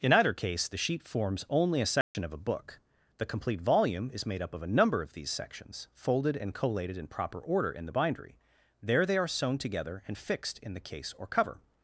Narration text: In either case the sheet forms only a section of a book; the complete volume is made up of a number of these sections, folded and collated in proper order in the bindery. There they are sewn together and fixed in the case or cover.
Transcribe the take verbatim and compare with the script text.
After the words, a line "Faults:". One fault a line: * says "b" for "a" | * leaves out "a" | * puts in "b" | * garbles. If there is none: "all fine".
In either case the sheet forms only a section of a book; the complete volume is made up of a number of these sections, folded and collated in proper order in the bindery. There they are sewn together and fixed in the case or cover.
Faults:
all fine